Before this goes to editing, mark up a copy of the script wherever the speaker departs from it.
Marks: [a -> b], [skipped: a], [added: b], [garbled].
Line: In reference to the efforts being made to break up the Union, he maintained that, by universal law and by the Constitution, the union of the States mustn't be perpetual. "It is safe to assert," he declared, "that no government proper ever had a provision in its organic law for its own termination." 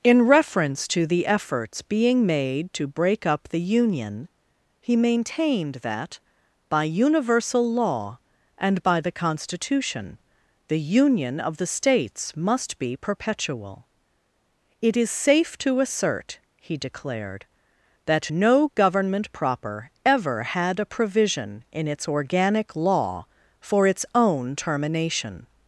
In reference to the efforts being made to break up the Union, he maintained that, by universal law and by the Constitution, the union of the States [mustn't -> must] be perpetual. "It is safe to assert," he declared, "that no government proper ever had a provision in its organic law for its own termination."